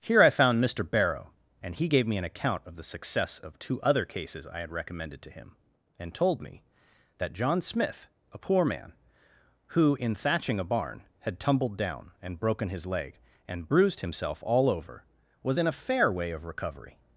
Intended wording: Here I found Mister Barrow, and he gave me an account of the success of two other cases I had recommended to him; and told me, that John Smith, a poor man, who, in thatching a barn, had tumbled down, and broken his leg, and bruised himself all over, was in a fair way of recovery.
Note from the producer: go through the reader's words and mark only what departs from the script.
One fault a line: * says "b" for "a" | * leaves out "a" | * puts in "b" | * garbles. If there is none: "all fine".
all fine